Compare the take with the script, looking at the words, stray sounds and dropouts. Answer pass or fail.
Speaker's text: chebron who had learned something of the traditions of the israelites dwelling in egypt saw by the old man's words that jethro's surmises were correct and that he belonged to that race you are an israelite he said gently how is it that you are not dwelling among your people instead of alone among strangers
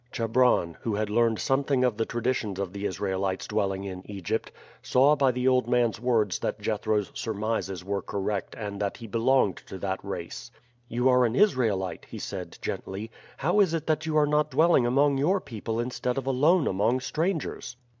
pass